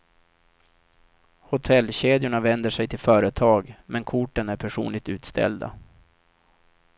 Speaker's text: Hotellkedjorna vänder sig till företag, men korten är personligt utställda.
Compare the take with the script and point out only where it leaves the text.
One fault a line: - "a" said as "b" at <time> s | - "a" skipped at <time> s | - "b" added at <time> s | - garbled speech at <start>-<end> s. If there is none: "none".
none